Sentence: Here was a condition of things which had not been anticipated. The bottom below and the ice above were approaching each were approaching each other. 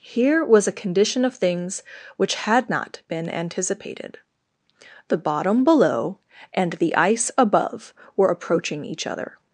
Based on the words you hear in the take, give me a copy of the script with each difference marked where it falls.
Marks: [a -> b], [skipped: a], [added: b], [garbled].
Here was a condition of things which had not been anticipated. The bottom below and the ice above were approaching each [skipped: were approaching each] other.